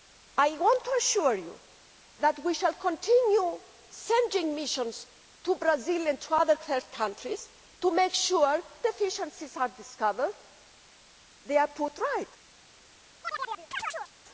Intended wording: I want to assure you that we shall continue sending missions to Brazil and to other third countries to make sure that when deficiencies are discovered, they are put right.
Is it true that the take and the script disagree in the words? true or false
true